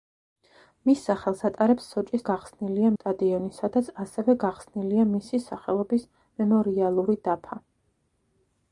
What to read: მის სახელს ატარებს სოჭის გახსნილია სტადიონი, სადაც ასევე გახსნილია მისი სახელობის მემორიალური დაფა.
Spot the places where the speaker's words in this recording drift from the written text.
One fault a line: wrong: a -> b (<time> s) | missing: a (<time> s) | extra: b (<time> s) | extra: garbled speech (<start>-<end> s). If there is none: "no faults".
no faults